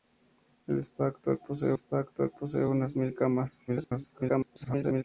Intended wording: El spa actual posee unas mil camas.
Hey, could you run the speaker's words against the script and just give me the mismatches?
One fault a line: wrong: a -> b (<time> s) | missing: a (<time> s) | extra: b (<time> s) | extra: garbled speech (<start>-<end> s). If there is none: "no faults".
extra: spa actual posee (1.7 s)
extra: garbled speech (3.7-5.0 s)